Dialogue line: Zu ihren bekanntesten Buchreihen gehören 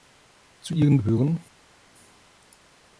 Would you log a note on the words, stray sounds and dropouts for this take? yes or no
yes